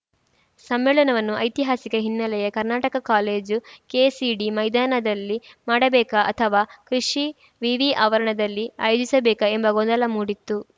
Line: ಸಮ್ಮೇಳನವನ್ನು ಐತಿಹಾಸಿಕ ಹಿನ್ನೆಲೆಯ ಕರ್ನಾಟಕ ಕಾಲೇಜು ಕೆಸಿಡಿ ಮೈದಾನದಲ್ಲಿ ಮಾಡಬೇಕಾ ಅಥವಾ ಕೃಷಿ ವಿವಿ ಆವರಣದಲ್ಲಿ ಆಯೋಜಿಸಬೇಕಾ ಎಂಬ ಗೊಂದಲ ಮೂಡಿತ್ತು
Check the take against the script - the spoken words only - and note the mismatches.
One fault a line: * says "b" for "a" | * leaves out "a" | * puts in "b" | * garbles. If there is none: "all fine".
all fine